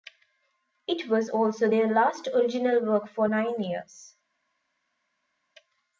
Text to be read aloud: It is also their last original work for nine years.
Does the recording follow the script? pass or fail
fail